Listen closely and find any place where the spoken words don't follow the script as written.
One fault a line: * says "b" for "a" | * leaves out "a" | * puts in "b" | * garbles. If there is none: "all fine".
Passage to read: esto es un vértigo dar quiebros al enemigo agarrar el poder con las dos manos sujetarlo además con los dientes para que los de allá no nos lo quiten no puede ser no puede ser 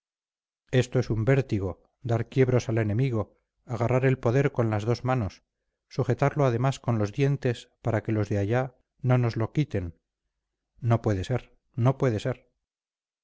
all fine